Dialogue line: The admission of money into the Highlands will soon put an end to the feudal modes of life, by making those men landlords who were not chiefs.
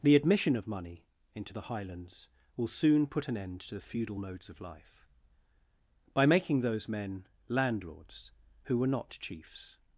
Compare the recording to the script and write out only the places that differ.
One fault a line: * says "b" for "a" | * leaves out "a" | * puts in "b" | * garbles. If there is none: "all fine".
all fine